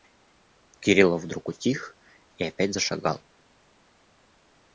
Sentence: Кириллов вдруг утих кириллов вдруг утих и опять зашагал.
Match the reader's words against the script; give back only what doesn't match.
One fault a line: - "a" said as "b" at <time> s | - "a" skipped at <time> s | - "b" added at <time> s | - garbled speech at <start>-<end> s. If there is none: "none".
- "кириллов вдруг утих" skipped at 2.0 s